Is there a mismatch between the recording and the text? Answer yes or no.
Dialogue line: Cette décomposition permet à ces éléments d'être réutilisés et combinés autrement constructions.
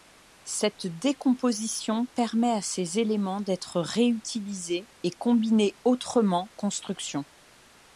no